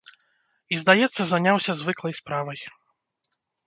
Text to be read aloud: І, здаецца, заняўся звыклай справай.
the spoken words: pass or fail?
pass